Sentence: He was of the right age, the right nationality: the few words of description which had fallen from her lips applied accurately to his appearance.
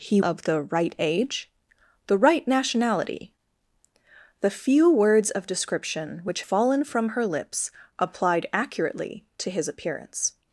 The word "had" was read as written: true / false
false